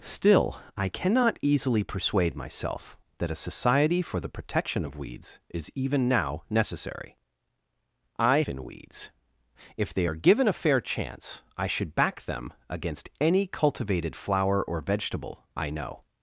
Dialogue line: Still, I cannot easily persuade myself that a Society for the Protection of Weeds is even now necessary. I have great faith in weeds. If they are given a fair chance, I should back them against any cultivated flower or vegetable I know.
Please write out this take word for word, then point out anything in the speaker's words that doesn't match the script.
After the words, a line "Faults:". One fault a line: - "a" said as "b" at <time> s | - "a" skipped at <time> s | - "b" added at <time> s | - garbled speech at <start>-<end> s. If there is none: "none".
Still, I cannot easily persuade myself that a Society for the Protection of Weeds is even now necessary. I in weeds. If they are given a fair chance, I should back them against any cultivated flower or vegetable I know.
Faults:
- "have great faith" skipped at 8.4 s